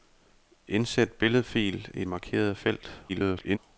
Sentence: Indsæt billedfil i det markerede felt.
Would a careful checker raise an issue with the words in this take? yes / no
yes